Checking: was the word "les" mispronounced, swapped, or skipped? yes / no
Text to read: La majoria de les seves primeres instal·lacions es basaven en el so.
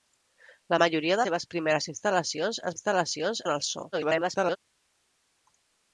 yes